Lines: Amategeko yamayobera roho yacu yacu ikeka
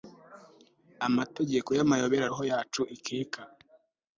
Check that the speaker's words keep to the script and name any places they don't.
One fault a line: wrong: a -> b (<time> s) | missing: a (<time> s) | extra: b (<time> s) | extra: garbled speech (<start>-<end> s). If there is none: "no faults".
missing: yacu (2.8 s)